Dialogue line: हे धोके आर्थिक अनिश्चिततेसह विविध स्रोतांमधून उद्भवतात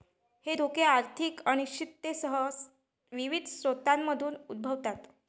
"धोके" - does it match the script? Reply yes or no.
yes